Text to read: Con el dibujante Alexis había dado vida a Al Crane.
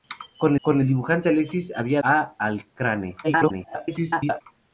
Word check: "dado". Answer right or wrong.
wrong